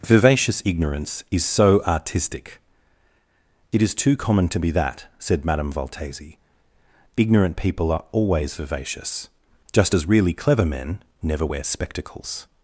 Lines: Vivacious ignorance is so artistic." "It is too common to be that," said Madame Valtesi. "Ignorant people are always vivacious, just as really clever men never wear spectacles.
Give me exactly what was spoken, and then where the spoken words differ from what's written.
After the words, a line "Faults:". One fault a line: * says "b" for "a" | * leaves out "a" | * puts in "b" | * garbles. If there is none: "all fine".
Vivacious ignorance is so artistic." "It is too common to be that," said Madame Valtesi. "Ignorant people are always vivacious, just as really clever men never wear spectacles.
Faults:
all fine